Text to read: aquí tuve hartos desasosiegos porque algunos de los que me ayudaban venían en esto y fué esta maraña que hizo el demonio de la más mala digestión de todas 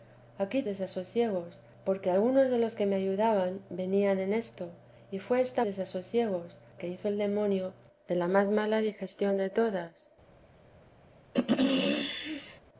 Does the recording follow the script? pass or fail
fail